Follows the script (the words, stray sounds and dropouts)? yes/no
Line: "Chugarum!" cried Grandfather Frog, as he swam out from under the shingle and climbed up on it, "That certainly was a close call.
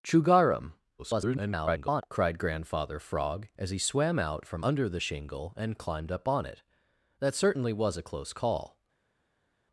no